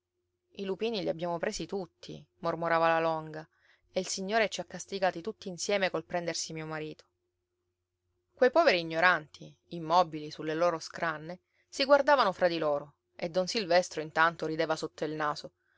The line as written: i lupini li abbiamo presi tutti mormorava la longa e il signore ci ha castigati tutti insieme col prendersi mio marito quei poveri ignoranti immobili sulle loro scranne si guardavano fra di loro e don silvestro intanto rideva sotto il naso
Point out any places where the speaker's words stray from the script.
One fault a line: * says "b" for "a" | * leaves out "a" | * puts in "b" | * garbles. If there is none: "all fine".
all fine